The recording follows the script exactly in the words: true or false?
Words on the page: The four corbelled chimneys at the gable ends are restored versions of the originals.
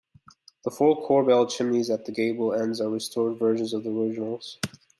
true